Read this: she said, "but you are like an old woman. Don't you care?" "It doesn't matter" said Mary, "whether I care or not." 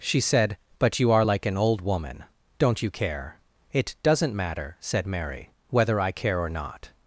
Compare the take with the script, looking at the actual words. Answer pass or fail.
pass